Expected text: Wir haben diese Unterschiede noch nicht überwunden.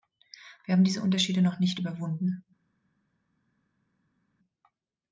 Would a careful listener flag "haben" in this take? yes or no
no